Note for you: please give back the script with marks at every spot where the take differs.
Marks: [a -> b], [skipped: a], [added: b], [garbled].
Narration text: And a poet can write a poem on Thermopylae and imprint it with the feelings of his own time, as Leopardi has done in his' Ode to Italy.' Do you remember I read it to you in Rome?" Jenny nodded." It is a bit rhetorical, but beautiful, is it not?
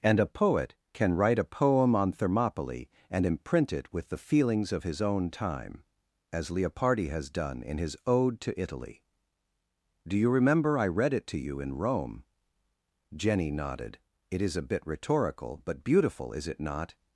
And a poet can write a poem on Thermopylae and imprint it with the feelings of his own time, as Leopardi has done in his' Ode to Italy.' Do you remember I read it to you in Rome?" Jenny nodded." It is a bit rhetorical, but beautiful, is it not?